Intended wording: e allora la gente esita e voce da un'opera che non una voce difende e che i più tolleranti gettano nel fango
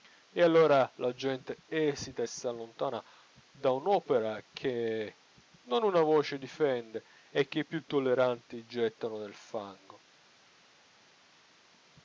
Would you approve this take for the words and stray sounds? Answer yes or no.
no